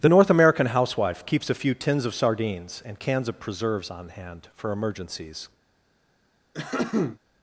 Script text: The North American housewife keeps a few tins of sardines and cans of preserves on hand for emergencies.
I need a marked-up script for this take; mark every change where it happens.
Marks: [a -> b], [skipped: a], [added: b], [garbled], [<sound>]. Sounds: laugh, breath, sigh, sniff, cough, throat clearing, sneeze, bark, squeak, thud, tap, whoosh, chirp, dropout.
The North American housewife keeps a few tins of sardines and cans of preserves on hand for emergencies. [throat clearing]